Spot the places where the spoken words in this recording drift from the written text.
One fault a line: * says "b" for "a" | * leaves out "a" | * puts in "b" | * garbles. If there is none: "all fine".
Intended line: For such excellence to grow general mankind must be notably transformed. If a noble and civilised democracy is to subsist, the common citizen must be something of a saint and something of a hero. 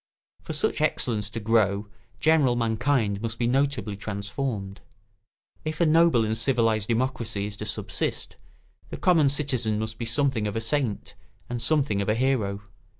all fine